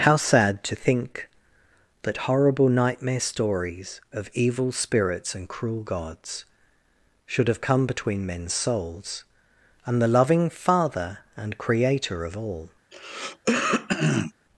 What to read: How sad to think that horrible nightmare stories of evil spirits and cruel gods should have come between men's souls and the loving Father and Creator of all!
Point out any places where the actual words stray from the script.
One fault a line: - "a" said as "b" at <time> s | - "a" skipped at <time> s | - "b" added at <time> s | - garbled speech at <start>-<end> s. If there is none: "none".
none